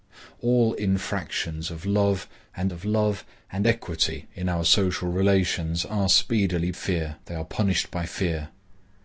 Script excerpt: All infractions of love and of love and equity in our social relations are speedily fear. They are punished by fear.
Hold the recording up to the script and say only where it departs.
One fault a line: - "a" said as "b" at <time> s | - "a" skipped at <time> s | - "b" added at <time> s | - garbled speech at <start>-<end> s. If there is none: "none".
none